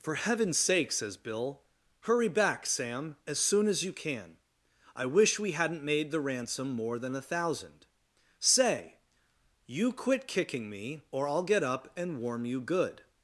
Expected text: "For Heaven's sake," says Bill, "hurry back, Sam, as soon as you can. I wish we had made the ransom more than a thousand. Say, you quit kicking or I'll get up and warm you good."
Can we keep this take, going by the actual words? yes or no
no